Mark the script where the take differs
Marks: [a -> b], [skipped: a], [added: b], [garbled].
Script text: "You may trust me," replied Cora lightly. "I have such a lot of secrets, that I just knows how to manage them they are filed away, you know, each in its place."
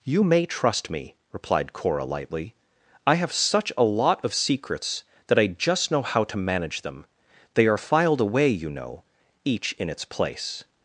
"You may trust me," replied Cora lightly. "I have such a lot of secrets, that I just [knows -> know] how to manage them they are filed away, you know, each in its place."